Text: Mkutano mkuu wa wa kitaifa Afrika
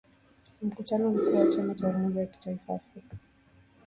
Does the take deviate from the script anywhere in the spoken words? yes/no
yes